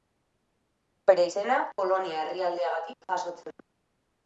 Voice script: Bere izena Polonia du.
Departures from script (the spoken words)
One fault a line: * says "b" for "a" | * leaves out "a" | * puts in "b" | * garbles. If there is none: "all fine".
* puts in "herrialdeagatik jasotzen"